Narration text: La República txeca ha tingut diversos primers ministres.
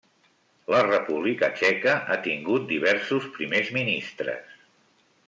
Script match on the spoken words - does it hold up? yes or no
yes